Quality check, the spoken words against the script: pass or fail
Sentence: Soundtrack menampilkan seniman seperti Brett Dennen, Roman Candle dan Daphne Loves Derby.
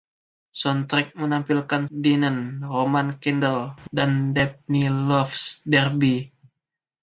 fail